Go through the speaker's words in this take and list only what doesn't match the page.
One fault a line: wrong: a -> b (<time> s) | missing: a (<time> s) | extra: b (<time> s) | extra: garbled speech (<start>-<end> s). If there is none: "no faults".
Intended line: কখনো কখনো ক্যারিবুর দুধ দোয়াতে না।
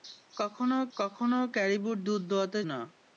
no faults